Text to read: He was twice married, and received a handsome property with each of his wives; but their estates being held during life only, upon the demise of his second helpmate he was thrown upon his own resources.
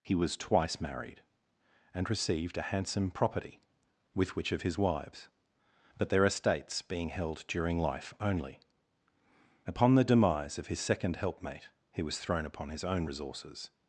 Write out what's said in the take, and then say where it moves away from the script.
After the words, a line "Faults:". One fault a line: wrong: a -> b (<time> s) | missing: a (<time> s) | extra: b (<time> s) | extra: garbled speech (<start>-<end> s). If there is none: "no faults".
He was twice married, and received a handsome property with which of his wives; but their estates being held during life only, upon the demise of his second helpmate he was thrown upon his own resources.
Faults:
wrong: each -> which (4.3 s)